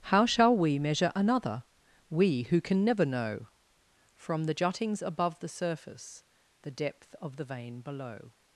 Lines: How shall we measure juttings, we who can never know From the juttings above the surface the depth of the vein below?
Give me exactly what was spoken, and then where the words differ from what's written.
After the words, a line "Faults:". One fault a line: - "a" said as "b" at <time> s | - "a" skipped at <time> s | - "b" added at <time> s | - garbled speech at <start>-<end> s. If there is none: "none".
How shall we measure another, we who can never know From the juttings above the surface the depth of the vein below?
Faults:
- "juttings" said as "another" at 1.1 s